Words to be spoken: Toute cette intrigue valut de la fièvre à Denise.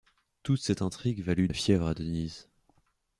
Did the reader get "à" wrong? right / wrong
right